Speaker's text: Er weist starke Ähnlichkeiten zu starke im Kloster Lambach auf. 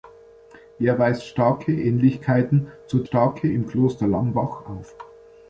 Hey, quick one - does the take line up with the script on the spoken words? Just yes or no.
yes